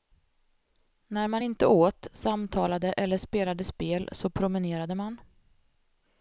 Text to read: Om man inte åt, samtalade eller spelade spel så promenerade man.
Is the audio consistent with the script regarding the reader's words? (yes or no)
no